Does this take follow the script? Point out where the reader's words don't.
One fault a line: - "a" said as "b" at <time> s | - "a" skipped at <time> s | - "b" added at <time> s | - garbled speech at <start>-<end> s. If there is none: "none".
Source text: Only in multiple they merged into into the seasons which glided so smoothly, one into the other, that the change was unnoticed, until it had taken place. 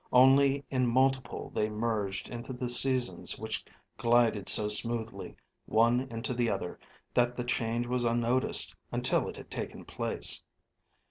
- "into" skipped at 2.5 s